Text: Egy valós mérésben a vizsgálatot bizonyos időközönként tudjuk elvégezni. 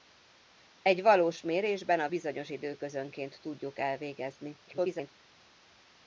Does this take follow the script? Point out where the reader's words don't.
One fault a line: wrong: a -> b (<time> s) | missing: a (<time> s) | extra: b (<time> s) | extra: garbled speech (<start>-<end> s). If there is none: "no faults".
missing: vizsgálatot (2.1 s)
extra: garbled speech (4.7-5.1 s)